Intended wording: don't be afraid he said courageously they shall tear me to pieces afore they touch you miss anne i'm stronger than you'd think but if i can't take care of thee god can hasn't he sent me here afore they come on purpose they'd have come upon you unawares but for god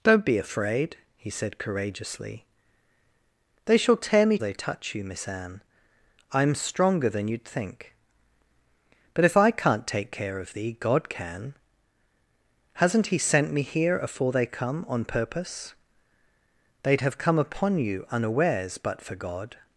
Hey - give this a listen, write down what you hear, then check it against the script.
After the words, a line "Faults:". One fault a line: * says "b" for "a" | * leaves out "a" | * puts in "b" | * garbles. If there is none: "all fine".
don't be afraid he said courageously they shall tear me they touch you miss anne i'm stronger than you'd think but if i can't take care of thee god can hasn't he sent me here afore they come on purpose they'd have come upon you unawares but for god
Faults:
* leaves out "to pieces afore"